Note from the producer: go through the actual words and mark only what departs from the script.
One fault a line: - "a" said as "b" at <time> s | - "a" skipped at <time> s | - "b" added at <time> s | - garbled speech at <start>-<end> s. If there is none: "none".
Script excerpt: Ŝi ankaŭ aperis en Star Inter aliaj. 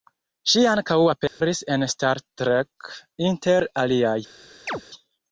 - "Trek" added at 2.4 s